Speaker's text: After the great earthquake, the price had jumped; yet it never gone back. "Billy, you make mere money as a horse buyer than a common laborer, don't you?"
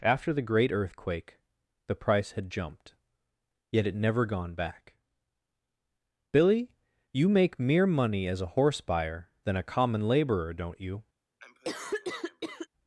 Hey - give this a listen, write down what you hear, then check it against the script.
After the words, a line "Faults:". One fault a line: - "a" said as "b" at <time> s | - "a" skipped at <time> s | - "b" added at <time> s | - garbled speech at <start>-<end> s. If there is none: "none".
After the great earthquake, the price had jumped; yet it never gone back. "Billy, you make mere money as a horse buyer than a common laborer, don't you?"
Faults:
none